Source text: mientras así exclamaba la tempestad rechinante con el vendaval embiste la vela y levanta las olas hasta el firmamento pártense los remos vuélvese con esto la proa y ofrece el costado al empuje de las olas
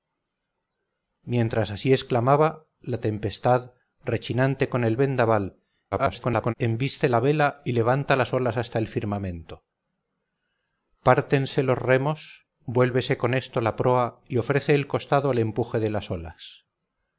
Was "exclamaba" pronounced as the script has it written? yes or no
yes